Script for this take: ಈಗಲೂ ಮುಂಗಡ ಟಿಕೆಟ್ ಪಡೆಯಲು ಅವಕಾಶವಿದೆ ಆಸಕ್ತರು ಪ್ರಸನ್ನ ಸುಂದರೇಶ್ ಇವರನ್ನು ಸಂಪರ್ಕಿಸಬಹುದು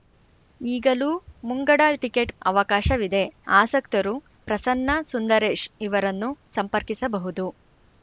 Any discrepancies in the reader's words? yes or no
yes